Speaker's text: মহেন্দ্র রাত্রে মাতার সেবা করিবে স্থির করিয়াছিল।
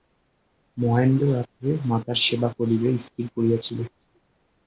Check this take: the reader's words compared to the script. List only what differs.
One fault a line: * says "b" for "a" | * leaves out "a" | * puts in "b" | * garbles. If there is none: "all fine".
all fine